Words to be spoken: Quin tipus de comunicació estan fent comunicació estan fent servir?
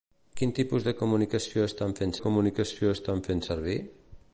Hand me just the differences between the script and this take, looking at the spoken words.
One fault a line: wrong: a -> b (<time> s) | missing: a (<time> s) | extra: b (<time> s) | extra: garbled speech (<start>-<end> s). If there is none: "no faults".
no faults